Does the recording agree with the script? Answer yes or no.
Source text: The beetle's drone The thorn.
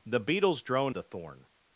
yes